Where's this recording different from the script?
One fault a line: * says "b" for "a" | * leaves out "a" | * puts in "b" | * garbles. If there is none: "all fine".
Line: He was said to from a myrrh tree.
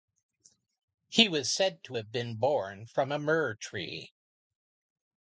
* puts in "have been born"